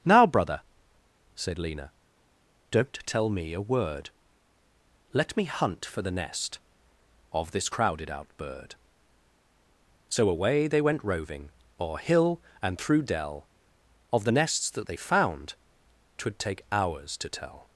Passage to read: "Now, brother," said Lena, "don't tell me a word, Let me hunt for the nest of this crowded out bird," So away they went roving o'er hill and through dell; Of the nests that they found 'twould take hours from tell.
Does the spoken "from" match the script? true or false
false